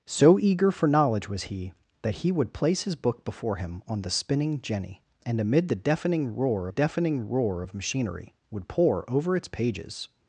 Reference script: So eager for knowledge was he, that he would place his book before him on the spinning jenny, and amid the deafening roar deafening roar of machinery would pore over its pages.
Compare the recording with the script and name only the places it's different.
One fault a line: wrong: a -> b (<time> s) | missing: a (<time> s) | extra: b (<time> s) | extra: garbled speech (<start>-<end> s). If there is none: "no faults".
no faults